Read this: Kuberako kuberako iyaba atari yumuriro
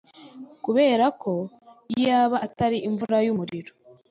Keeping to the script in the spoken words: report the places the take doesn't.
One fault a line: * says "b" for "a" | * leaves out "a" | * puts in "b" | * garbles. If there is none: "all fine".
* leaves out "kuberako"
* puts in "imvura"